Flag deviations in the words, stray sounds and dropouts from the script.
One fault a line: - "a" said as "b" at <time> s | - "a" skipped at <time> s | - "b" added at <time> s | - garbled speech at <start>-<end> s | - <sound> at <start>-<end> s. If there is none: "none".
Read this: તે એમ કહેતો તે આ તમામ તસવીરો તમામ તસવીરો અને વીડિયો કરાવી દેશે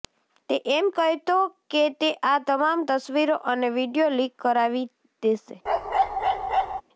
- "કે" added at 1.7 s
- "તમામ તસવીરો" skipped at 3.4 s
- "લીક" added at 4.1 s
- bark at 5.7-6.8 s